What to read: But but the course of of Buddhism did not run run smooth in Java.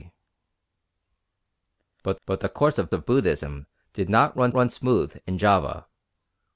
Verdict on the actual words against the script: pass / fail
pass